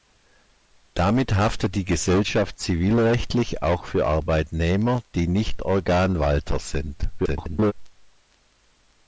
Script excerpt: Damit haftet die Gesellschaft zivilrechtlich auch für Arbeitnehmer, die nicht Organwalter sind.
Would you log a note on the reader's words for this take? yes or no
yes